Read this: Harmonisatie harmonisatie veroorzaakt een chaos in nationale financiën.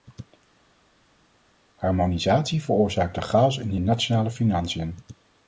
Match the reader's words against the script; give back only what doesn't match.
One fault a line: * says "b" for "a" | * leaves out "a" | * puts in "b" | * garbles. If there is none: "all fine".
* leaves out "harmonisatie"
* puts in "de"